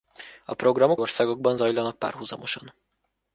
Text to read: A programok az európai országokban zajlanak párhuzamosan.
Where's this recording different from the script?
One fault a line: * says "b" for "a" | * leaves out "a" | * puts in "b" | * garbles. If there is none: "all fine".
* leaves out "az európai"